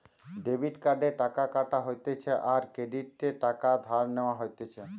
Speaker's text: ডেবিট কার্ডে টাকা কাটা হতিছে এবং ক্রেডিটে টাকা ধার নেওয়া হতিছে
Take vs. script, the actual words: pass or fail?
fail